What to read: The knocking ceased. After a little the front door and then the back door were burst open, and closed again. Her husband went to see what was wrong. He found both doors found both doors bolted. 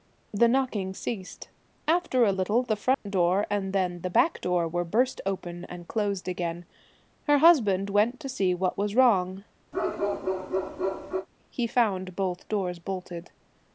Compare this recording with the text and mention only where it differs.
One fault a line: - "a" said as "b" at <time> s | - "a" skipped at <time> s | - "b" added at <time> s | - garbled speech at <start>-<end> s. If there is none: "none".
- "found both doors" skipped at 12.8 s